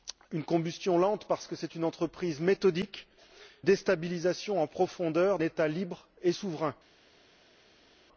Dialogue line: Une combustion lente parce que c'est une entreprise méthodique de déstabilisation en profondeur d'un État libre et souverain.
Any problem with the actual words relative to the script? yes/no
yes